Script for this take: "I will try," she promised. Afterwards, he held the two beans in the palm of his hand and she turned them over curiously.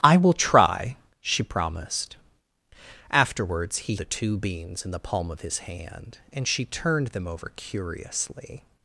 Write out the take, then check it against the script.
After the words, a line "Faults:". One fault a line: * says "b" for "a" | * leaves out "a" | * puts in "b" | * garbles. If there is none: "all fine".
"I will try," she promised. Afterwards, he the two beans in the palm of his hand and she turned them over curiously.
Faults:
* leaves out "held"